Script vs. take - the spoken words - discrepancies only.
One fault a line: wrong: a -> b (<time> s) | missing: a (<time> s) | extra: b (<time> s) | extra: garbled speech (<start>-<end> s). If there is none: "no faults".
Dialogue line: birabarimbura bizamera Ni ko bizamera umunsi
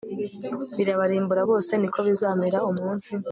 wrong: bizamera -> bose (1.5 s)